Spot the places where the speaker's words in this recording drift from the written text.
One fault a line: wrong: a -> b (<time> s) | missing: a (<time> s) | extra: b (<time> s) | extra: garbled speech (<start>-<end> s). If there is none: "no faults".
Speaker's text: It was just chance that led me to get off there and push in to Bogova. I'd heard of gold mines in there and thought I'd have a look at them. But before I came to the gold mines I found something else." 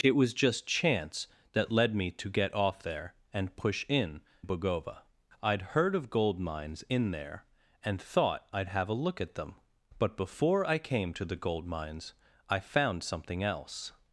missing: to (4.2 s)